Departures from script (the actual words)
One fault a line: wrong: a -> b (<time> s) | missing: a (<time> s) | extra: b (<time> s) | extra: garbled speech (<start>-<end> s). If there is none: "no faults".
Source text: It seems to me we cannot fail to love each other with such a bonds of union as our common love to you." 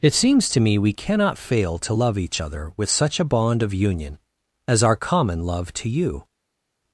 wrong: bonds -> bond (3.2 s)